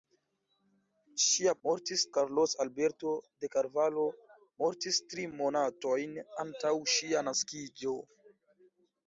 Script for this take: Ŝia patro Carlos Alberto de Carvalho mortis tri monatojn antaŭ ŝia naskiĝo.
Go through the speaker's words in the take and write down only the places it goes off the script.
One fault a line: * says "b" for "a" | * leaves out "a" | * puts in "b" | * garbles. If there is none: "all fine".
* says "mortis" for "patro"